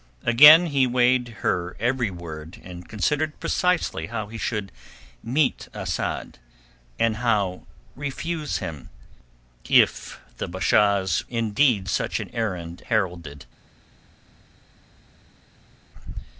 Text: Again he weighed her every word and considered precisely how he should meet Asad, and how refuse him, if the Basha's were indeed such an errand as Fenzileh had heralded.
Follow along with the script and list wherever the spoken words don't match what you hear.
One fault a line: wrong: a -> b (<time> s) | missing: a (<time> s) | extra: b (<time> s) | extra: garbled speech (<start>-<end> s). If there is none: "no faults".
missing: were (11.3 s)
missing: as Fenzileh had (12.8 s)